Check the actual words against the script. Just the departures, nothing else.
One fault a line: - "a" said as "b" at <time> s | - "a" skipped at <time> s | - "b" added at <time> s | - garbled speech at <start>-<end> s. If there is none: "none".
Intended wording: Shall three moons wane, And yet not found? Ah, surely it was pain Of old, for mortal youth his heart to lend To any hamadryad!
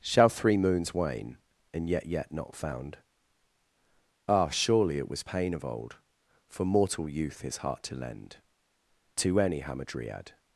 - "yet" added at 2.1 s